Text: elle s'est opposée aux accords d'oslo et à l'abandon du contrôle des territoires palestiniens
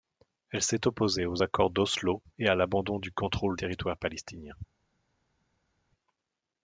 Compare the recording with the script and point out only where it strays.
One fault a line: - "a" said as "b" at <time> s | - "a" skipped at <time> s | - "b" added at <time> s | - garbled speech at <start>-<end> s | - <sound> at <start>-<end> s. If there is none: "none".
- "des" skipped at 3.6 s